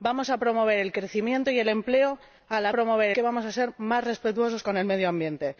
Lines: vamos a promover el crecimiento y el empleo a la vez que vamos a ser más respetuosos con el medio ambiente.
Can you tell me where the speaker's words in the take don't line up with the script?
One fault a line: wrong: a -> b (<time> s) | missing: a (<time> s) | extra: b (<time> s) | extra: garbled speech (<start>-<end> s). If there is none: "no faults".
wrong: vez -> promover (2.7 s)